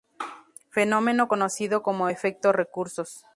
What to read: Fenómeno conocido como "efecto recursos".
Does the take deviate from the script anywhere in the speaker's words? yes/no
no